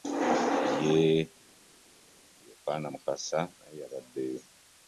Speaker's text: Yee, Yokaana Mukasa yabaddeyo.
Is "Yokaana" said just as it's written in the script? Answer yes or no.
yes